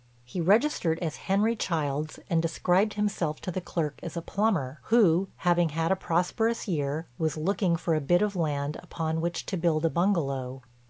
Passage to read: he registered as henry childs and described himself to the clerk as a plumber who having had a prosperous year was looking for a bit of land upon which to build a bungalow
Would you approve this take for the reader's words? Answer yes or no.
yes